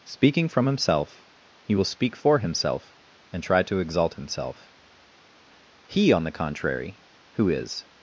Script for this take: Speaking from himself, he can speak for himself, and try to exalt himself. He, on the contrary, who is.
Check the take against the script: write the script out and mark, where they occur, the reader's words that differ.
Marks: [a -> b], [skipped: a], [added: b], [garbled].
Speaking from himself, he [can -> will] speak for himself, and try to exalt himself. He, on the contrary, who is.